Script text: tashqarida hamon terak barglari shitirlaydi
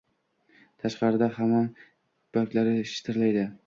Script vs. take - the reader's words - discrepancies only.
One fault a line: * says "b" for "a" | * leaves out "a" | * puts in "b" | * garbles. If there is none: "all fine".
* leaves out "terak"